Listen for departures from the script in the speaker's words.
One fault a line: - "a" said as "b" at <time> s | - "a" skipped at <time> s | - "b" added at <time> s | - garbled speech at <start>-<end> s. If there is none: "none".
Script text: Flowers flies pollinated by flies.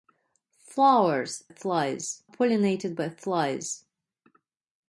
none